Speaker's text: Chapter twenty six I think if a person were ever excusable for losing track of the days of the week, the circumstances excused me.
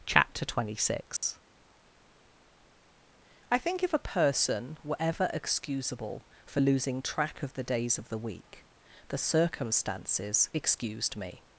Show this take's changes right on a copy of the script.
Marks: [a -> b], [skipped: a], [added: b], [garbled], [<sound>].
Chapter twenty six [dropout] I think if a person were ever excusable for losing track of the days of the week, the circumstances excused me.